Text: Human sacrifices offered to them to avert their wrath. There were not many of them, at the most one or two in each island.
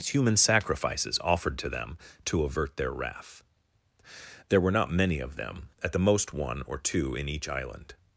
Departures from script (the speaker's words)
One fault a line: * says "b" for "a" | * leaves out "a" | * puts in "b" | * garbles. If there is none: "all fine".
all fine